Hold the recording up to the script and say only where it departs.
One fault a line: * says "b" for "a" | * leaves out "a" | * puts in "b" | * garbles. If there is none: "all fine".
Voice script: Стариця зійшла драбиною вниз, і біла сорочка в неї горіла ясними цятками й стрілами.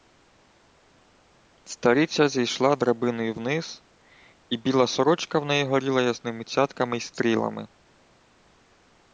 all fine